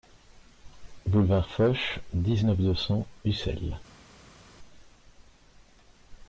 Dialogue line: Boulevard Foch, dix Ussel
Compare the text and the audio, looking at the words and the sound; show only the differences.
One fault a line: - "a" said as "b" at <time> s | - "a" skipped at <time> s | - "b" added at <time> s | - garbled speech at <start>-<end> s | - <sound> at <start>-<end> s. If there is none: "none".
- "neuf deux cents" added at 2.4 s